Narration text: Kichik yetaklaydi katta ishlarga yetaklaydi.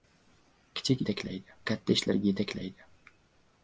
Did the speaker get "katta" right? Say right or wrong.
right